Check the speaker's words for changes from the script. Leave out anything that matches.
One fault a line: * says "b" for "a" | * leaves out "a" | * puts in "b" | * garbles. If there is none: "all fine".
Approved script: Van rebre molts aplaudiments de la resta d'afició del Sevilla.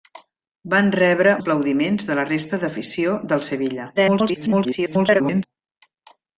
* leaves out "molts"
* garbles